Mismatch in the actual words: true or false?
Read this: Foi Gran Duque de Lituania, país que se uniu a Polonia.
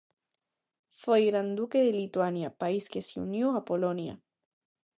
false